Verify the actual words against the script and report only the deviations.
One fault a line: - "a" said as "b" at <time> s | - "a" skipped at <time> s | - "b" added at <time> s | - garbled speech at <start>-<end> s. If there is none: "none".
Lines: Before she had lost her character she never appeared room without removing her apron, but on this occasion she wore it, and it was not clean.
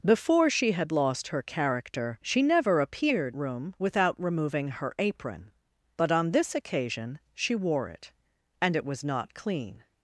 none